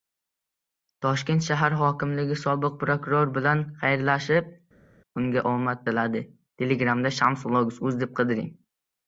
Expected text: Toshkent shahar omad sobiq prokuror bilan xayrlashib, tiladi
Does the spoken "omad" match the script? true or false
false